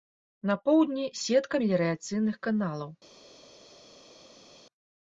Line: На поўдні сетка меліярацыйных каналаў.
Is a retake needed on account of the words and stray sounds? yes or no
no